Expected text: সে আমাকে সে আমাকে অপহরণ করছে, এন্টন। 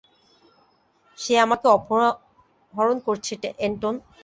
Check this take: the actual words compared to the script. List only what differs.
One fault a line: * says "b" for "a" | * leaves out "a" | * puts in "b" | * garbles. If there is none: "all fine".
* leaves out "সে আমাকে"